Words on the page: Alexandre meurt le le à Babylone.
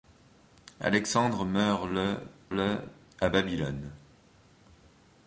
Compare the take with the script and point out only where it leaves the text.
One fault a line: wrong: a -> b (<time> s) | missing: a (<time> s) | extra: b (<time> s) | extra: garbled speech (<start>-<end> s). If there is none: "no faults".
no faults